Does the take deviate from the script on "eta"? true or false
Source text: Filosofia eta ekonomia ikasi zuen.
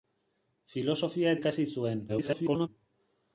true